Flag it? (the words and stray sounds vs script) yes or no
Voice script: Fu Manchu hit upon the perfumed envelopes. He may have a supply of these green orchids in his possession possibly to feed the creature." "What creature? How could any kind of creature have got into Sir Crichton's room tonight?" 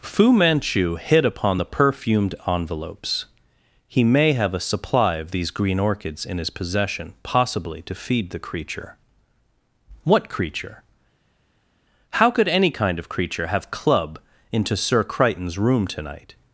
yes